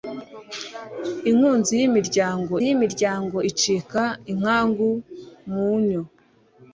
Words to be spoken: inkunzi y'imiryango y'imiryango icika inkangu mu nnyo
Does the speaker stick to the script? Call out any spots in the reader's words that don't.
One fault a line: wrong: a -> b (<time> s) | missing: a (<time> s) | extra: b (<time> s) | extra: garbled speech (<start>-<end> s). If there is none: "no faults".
no faults